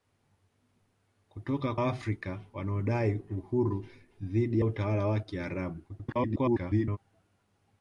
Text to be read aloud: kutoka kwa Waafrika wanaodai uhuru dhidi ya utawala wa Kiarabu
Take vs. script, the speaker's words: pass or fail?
fail